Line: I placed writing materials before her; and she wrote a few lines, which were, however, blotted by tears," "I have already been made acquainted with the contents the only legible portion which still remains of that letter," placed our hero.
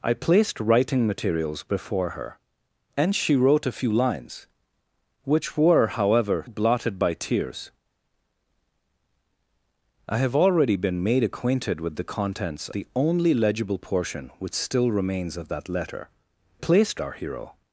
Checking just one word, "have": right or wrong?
right